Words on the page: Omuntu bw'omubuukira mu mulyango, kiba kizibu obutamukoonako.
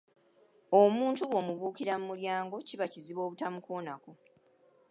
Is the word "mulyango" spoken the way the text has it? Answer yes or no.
yes